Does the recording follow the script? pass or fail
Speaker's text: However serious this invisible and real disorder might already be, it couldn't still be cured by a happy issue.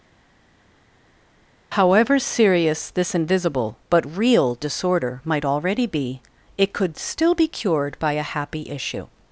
fail